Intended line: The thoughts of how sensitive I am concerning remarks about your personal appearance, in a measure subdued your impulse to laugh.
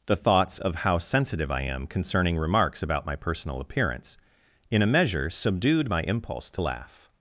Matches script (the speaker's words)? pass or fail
fail